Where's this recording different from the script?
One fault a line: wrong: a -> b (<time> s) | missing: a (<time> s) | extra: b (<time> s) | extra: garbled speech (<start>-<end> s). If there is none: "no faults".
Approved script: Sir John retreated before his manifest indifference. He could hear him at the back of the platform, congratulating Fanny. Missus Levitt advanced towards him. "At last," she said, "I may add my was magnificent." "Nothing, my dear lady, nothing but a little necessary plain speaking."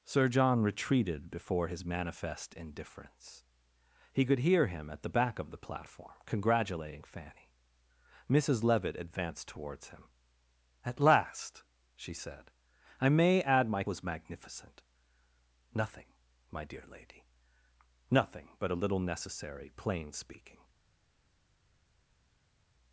no faults